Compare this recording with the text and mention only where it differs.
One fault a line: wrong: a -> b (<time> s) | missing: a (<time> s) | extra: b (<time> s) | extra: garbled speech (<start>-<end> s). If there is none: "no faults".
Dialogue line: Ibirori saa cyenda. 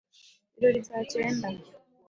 no faults